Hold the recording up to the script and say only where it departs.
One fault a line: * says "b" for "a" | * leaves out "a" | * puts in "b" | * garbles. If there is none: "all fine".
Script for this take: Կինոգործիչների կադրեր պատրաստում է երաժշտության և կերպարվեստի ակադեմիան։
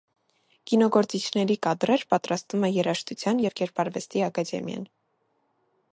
all fine